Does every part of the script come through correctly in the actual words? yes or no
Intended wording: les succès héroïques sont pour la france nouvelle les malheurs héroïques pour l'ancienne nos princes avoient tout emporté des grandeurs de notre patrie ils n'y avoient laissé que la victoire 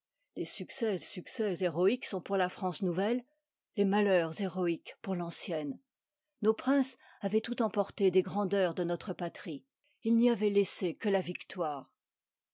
no